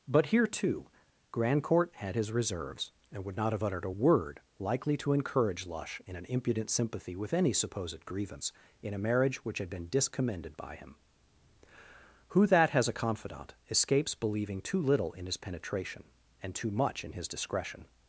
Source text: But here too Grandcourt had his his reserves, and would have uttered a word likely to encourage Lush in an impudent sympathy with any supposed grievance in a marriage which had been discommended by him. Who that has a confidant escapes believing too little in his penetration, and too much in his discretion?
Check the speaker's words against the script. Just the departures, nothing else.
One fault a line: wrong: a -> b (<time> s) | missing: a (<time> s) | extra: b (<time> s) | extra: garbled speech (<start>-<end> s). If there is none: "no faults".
missing: his (2.3 s)
extra: not (3.4 s)